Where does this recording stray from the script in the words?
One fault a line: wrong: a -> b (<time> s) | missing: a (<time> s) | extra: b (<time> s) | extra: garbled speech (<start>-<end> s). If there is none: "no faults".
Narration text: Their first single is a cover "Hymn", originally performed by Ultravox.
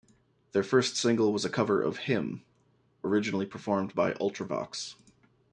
wrong: is -> was (1.3 s)
extra: of (1.8 s)